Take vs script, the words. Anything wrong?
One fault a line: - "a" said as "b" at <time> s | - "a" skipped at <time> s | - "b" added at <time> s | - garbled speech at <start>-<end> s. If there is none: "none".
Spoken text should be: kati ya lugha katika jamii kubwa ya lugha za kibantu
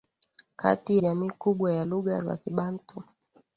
- "ya lugha katika" skipped at 1.0 s